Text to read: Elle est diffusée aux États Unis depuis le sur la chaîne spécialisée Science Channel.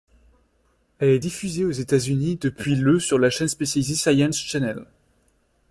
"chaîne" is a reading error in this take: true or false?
false